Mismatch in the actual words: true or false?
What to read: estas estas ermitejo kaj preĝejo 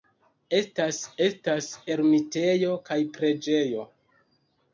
false